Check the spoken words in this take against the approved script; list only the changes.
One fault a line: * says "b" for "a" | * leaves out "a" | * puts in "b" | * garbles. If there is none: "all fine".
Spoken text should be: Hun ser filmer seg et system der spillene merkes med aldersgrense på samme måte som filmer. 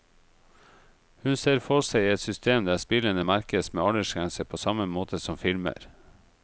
* says "for" for "filmer"